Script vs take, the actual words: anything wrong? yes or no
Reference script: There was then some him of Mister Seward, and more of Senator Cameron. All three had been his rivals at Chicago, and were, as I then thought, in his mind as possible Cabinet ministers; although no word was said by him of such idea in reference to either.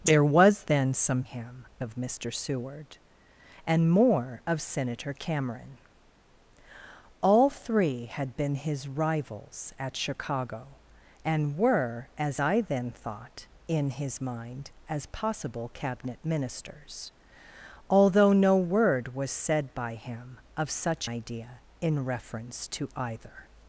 no